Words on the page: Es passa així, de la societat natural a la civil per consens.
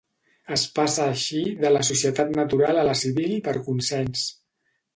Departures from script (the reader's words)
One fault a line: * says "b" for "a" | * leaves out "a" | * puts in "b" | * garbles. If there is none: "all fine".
all fine